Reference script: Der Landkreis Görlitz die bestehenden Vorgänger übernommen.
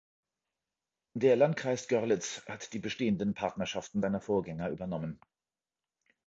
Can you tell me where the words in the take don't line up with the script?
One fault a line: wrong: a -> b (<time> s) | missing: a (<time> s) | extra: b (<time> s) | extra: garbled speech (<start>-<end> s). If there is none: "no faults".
extra: hat (2.5 s)
extra: Partnerschaften seiner (3.4 s)